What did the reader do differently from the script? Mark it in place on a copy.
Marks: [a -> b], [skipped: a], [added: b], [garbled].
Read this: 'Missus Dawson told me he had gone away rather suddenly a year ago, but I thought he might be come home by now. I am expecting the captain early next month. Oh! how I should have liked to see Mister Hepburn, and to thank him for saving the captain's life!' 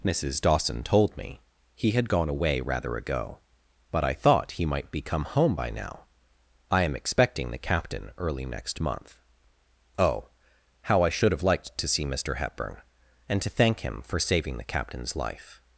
'Missus Dawson told me he had gone away rather [skipped: suddenly a year] ago, but I thought he might be come home by now. I am expecting the captain early next month. Oh! how I should have liked to see Mister Hepburn, and to thank him for saving the captain's life!'